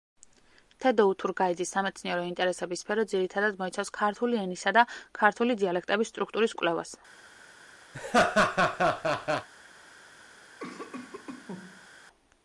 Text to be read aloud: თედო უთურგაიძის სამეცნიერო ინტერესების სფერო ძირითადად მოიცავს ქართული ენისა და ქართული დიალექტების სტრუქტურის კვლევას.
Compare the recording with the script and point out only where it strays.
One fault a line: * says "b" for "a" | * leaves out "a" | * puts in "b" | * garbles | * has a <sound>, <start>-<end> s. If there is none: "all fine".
* has a laugh, 7.9-9.5 s
* has a cough, 10.6-11.9 s